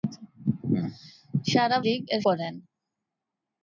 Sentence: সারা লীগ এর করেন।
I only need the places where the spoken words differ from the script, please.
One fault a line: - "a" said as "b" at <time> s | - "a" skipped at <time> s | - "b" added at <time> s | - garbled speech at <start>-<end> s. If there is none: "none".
none